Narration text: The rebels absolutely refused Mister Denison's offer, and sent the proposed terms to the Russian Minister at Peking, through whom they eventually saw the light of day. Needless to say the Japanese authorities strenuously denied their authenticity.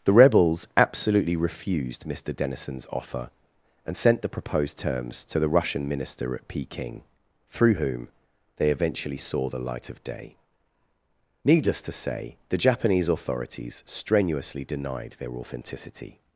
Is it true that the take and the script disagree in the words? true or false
false